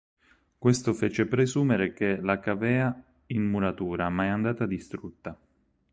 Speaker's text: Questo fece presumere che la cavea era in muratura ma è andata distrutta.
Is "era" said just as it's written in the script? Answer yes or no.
no